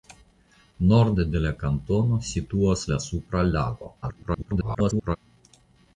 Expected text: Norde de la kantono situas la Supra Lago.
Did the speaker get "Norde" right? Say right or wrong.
right